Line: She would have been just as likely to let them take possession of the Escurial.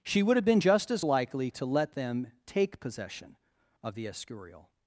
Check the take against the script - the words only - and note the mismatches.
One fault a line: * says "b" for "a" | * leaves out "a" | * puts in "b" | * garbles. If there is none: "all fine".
all fine